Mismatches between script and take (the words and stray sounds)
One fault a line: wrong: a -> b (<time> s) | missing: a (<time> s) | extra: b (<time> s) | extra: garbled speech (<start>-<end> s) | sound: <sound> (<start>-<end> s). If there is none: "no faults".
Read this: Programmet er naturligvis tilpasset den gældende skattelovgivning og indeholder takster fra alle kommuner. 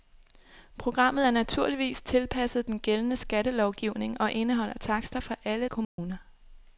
sound: dropout (5.8-6.0 s)